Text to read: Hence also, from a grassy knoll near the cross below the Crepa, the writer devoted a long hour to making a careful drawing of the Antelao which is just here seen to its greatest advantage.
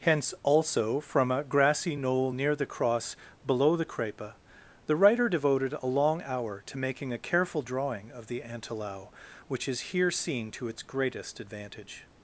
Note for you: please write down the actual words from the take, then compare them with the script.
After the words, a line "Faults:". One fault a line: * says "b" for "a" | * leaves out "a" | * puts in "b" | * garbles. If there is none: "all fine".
Hence also, from a grassy knoll near the cross below the Crepa, the writer devoted a long hour to making a careful drawing of the Antelao which is here seen to its greatest advantage.
Faults:
* leaves out "just"